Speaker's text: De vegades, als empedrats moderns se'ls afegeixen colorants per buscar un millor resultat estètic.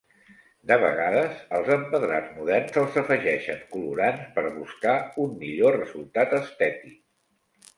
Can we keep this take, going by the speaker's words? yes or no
yes